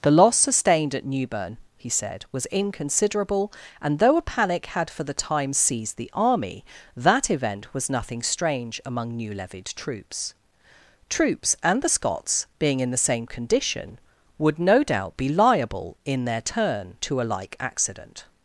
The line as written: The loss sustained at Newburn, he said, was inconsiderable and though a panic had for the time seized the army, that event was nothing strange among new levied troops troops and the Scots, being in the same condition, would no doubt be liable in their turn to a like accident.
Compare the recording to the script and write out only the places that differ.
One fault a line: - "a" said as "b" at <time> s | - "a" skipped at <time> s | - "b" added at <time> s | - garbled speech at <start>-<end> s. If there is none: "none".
none